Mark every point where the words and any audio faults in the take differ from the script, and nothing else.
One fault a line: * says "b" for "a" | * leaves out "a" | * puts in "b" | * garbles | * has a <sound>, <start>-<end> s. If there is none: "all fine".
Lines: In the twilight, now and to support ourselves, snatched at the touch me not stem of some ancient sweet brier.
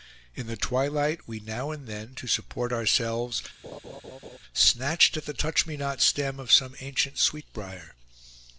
* puts in "we"
* puts in "then"
* has a laugh, 3.6-4.4 s